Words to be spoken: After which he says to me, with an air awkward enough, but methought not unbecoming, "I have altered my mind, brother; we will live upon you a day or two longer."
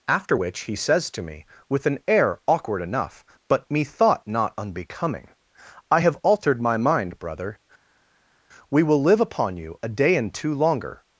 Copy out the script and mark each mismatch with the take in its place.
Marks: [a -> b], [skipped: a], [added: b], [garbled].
After which he says to me, with an air awkward enough, but methought not unbecoming, "I have altered my mind, brother; we will live upon you a day [or -> and] two longer."